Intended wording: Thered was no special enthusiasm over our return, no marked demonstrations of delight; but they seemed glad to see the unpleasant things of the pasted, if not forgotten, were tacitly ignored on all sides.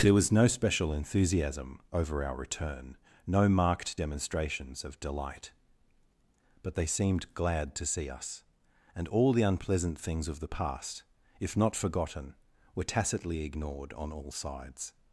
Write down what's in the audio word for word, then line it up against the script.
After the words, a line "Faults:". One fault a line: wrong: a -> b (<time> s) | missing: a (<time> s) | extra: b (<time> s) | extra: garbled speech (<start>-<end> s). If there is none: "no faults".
There was no special enthusiasm over our return, no marked demonstrations of delight; but they seemed glad to see us, and all the unpleasant things of the past, if not forgotten, were tacitly ignored on all sides.
Faults:
wrong: Thered -> There (0.0 s)
extra: us and all (8.1 s)
wrong: pasted -> past (10.5 s)